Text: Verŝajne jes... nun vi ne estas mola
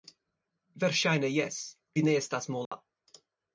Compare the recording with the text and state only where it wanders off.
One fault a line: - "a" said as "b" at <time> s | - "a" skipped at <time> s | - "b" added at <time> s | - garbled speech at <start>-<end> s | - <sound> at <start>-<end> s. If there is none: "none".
- "nun" skipped at 1.6 s
- dropout at 2.7-2.7 s